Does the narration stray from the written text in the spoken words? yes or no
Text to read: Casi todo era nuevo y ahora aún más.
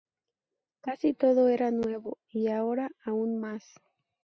no